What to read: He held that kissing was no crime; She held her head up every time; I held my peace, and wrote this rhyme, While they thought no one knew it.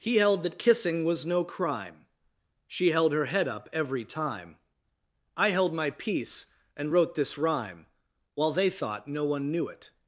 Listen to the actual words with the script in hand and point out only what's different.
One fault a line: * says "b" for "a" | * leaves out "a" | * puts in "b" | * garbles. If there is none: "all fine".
all fine